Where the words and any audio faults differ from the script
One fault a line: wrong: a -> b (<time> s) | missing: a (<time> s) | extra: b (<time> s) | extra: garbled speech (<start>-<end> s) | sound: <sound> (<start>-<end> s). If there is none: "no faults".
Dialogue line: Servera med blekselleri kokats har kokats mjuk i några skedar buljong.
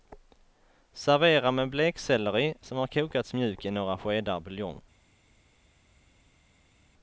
wrong: kokats -> som (2.6 s)